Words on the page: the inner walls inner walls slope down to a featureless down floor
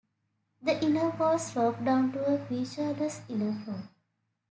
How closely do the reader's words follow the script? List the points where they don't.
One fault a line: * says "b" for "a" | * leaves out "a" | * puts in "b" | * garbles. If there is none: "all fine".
* leaves out "inner walls"
* says "inner" for "down"